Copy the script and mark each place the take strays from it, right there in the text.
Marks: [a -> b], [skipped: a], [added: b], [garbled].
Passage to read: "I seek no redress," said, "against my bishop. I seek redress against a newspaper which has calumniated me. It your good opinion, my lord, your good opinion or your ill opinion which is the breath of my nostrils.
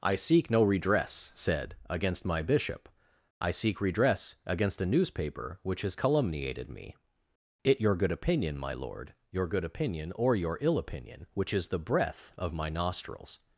"I seek no redress," said, "against my bishop. I seek redress against a newspaper which has calumniated me. It your good opinion, my lord, your good opinion or your ill opinion which is the breath of my nostrils.